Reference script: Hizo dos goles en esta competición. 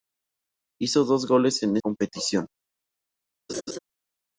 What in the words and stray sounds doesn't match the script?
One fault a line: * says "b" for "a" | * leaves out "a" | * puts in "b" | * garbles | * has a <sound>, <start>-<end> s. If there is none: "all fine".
* leaves out "esta"
* has a laugh, 3.5-3.8 s